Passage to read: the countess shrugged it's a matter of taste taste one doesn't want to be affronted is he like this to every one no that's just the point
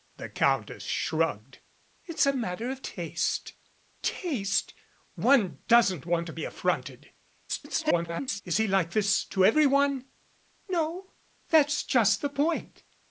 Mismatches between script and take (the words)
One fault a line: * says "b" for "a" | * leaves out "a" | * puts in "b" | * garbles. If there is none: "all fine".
* garbles